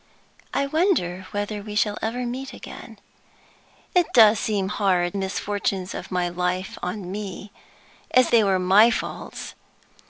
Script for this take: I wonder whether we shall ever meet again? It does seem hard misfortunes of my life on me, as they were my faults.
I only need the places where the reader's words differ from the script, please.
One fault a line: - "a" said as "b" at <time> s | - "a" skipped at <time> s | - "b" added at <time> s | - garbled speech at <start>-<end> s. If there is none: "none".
none